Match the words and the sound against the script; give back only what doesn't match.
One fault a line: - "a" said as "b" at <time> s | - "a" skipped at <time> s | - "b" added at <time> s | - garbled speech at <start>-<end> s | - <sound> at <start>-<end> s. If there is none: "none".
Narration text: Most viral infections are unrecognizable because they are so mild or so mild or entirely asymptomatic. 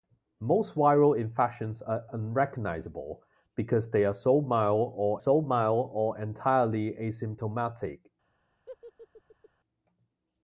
- laugh at 8.7-9.5 s